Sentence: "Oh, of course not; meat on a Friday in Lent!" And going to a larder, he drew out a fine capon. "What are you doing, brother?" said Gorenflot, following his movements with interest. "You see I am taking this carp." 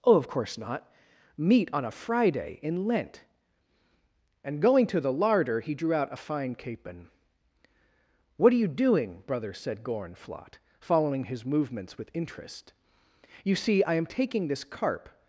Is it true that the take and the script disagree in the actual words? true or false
true